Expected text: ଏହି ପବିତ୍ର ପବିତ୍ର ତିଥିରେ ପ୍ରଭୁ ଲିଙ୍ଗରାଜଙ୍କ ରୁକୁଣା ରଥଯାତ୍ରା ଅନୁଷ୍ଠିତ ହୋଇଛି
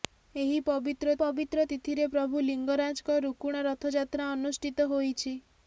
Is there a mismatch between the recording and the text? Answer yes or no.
no